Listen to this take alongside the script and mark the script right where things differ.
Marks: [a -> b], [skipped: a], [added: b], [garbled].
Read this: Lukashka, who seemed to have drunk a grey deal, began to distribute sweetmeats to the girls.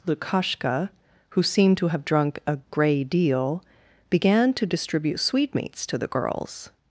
Lukashka, who seemed to have drunk a grey deal, began to distribute sweetmeats to the girls.